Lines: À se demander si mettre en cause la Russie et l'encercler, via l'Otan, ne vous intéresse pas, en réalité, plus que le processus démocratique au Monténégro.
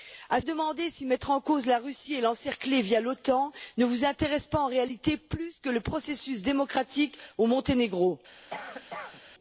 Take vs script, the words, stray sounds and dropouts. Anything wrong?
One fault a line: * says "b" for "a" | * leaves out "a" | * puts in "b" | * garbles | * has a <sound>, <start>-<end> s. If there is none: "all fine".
* leaves out "se"
* has a cough, 8.5-9.2 s